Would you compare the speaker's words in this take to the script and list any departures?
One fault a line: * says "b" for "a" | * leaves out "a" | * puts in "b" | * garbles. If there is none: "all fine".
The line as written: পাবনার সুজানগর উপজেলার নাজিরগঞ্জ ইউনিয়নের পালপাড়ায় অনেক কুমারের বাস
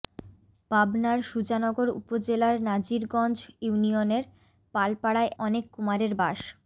all fine